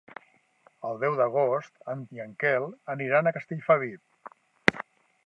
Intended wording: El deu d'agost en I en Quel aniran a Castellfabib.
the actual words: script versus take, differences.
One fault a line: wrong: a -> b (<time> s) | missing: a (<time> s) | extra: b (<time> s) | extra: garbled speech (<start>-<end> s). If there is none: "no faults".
no faults